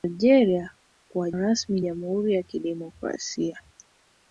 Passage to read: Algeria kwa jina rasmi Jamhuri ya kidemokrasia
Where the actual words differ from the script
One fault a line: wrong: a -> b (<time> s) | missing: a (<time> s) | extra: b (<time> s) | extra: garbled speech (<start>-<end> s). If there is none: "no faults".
missing: jina (1.3 s)